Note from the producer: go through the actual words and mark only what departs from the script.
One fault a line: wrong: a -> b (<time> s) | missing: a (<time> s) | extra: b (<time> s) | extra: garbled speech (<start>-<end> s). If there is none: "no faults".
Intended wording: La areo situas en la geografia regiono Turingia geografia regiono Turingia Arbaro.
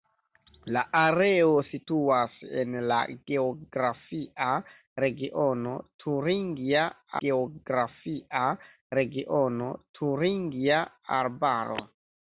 no faults